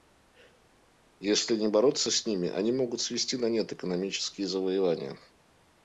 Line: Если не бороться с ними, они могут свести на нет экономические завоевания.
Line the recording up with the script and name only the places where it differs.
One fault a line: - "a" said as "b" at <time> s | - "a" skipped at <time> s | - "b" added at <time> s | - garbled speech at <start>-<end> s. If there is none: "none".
none